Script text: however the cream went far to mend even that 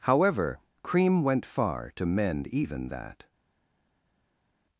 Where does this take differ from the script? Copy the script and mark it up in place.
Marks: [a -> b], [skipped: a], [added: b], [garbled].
however [skipped: the] cream went far to mend even that